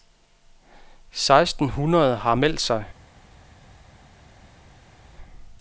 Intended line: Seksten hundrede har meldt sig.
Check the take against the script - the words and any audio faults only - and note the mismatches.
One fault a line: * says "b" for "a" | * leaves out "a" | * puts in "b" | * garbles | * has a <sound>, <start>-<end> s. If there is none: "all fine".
all fine